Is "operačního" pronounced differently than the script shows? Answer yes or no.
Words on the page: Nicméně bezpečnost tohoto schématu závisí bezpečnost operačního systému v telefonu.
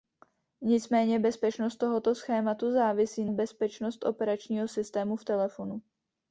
no